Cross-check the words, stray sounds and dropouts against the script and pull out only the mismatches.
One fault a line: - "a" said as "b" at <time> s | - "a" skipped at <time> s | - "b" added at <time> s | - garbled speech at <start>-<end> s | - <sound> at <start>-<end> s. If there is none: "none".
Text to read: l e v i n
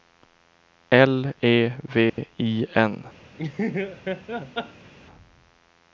- dropout at 2.1-2.2 s
- laugh at 3.4-4.9 s